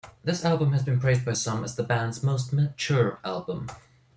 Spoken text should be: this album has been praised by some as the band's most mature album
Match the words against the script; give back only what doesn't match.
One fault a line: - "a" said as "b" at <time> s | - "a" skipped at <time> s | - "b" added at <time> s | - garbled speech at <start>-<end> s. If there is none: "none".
none